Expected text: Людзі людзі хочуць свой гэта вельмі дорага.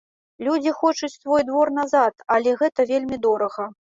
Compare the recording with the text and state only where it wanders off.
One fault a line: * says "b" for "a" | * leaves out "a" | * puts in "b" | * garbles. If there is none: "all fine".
* leaves out "людзі"
* puts in "двор назад але"